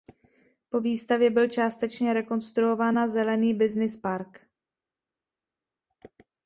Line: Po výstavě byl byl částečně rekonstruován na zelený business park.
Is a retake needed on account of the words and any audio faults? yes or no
yes